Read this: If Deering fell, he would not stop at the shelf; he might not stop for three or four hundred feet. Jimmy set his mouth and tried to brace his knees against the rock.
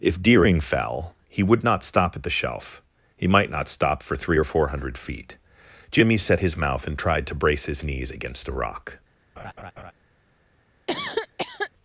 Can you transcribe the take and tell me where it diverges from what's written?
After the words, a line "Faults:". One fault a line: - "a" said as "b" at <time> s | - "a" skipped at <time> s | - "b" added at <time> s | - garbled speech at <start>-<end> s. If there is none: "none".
If Deering fell, he would not stop at the shelf; he might not stop for three or four hundred feet. Jimmy set his mouth and tried to brace his knees against the rock.
Faults:
none